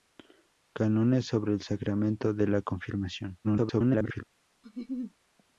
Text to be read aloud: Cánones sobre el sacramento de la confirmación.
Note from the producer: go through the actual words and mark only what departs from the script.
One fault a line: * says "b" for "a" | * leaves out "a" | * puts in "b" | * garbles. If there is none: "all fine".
* garbles